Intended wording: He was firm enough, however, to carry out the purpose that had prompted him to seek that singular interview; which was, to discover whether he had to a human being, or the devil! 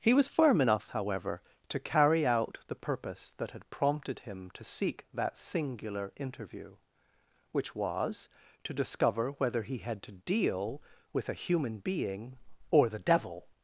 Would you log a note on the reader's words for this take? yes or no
yes